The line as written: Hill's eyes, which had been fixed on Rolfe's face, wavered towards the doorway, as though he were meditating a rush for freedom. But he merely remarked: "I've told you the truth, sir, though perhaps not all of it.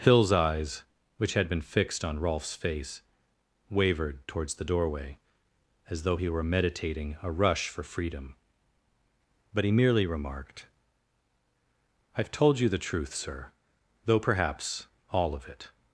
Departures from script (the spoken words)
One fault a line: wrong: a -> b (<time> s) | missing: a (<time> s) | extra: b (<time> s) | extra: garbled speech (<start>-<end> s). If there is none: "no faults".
missing: not (14.9 s)